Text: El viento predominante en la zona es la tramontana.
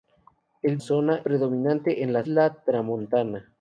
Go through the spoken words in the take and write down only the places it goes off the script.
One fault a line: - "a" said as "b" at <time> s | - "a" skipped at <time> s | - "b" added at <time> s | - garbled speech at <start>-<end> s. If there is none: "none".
- "viento" said as "zona" at 0.8 s
- "zona es" skipped at 2.2 s